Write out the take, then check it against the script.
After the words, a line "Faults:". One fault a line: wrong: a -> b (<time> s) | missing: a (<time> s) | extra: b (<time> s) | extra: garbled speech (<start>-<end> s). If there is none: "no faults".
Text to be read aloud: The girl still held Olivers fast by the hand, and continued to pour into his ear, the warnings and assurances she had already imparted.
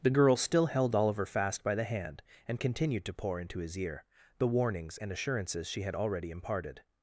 The girl still held Oliver fast by the hand, and continued to pour into his ear, the warnings and assurances she had already imparted.
Faults:
wrong: Olivers -> Oliver (0.9 s)